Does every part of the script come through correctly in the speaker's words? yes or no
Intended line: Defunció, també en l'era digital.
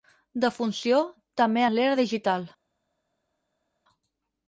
yes